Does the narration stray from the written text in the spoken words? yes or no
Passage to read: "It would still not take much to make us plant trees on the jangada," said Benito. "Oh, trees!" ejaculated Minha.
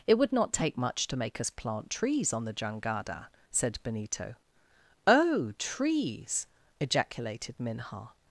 yes